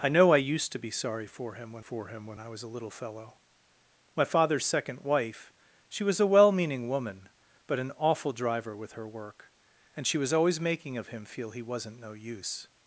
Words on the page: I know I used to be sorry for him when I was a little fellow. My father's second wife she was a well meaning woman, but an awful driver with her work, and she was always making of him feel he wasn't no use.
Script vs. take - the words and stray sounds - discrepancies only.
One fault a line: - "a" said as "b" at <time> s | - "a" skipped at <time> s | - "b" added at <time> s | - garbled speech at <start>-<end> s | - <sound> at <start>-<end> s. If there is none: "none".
- "for him when" added at 1.8 s